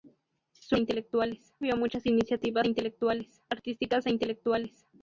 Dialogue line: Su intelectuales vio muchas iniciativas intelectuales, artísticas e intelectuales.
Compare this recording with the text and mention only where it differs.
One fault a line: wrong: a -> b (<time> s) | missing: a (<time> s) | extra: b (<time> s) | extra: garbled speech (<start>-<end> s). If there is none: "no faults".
no faults